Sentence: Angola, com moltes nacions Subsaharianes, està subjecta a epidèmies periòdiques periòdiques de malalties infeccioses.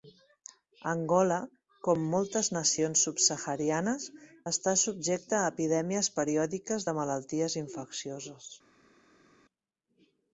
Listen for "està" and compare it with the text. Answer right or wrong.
right